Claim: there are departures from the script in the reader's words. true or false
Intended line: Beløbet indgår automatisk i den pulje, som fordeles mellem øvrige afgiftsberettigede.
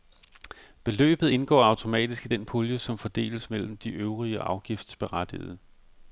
true